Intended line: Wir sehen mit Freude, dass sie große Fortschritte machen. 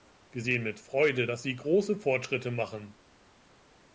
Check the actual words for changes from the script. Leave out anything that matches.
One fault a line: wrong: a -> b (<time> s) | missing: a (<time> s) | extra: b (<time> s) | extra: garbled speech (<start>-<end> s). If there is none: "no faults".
no faults